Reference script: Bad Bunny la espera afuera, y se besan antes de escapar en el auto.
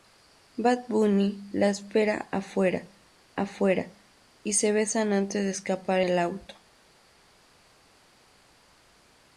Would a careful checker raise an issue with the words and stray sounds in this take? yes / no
yes